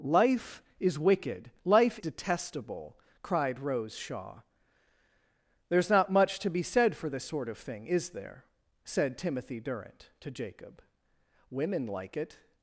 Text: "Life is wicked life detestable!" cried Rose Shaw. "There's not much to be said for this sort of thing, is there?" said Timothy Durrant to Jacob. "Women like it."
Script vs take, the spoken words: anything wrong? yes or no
no